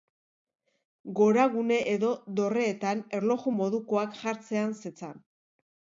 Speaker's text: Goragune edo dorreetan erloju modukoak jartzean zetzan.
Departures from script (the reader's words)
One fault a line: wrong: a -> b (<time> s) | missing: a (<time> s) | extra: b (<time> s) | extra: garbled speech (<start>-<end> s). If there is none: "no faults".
no faults